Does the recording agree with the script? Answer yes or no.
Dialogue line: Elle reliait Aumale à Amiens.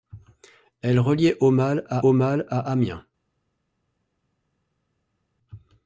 no